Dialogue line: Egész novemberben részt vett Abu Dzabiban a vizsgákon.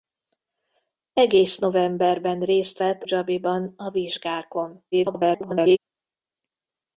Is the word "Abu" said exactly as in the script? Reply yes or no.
no